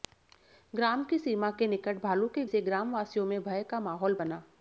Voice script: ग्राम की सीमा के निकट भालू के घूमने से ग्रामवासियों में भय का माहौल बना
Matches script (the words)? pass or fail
fail